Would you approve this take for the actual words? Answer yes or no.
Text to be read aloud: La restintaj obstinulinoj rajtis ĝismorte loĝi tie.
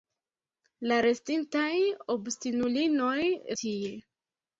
no